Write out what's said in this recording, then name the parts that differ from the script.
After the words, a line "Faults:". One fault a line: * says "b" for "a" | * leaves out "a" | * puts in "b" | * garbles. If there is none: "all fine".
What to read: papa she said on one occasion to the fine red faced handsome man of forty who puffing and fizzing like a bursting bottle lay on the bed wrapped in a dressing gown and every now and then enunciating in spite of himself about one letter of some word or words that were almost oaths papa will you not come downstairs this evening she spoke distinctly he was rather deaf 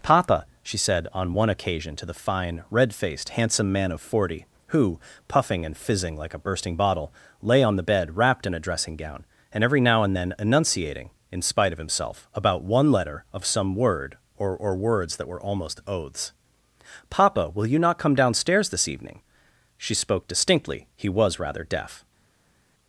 papa she said on one occasion to the fine red faced handsome man of forty who puffing and fizzing like a bursting bottle lay on the bed wrapped in a dressing gown and every now and then enunciating in spite of himself about one letter of some word or or words that were almost oaths papa will you not come downstairs this evening she spoke distinctly he was rather deaf
Faults:
* puts in "or"